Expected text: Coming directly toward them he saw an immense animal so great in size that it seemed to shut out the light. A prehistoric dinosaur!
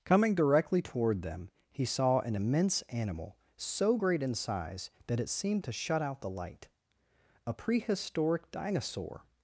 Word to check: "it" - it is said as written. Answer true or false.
true